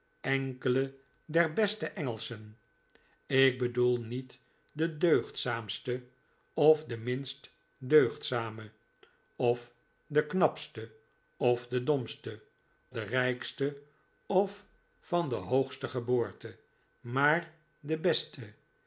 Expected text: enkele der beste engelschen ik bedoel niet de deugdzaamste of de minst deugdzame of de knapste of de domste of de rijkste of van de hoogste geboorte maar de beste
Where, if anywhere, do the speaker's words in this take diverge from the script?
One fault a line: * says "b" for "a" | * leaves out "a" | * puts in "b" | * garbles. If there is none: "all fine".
* leaves out "of"